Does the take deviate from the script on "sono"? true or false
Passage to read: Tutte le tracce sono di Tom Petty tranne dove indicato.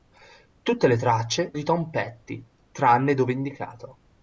true